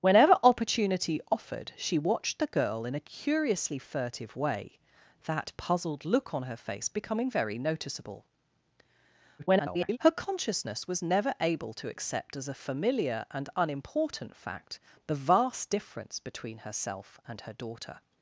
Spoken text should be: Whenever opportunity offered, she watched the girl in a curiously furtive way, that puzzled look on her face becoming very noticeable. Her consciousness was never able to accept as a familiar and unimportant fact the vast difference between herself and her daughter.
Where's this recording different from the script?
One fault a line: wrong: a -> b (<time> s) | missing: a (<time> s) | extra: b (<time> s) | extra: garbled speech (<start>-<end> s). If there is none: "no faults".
extra: garbled speech (9.4-10.0 s)